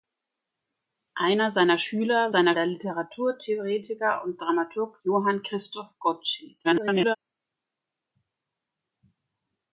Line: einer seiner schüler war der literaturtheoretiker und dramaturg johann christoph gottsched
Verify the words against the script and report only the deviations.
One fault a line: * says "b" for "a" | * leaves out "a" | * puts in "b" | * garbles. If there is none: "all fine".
* says "seiner" for "war"
* garbles